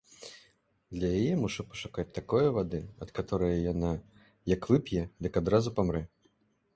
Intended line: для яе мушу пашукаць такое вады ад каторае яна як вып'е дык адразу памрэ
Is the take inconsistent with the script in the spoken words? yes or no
no